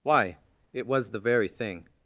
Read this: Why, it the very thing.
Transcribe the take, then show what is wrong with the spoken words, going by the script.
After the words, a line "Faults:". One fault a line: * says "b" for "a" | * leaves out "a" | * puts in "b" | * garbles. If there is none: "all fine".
Why, it was the very thing.
Faults:
* puts in "was"